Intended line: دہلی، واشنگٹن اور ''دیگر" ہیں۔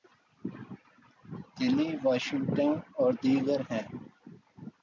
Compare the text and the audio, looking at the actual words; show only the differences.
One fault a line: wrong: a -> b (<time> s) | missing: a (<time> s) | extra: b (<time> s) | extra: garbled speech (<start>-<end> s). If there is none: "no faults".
no faults